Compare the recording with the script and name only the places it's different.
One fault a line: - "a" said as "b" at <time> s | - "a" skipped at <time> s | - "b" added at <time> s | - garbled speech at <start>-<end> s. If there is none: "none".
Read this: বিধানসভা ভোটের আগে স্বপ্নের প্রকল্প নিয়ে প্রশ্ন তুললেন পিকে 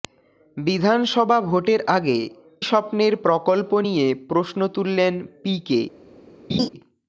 none